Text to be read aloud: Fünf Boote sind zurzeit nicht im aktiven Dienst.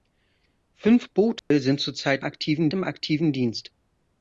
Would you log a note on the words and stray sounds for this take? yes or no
yes